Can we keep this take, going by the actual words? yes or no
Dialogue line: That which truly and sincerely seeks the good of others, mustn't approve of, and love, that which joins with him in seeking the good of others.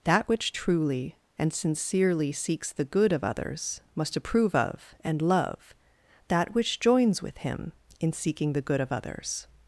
no